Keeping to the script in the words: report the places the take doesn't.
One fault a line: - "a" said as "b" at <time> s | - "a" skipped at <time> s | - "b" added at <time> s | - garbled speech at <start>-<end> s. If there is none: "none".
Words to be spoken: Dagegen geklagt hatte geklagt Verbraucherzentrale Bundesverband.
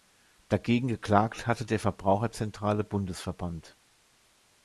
- "geklagt" said as "der" at 1.6 s